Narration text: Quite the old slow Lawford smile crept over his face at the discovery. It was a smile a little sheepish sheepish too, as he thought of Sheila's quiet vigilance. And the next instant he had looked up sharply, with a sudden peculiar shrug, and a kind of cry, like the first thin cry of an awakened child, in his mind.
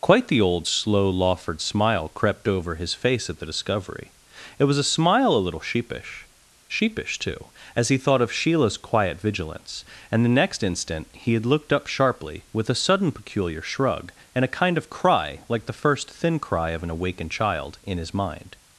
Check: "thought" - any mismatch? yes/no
no